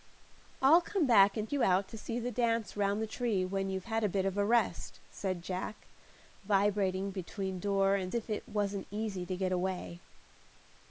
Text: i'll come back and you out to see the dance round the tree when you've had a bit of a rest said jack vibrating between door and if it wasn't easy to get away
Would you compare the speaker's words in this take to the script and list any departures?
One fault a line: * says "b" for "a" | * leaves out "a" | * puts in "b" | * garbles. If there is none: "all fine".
all fine